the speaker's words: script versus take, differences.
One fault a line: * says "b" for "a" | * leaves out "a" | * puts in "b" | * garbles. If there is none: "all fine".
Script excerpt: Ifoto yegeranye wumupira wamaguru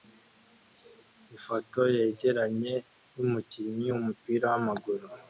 * puts in "yumukinnyi"